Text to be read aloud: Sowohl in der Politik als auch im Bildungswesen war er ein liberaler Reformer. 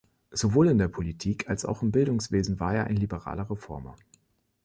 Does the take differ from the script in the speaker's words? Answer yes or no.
no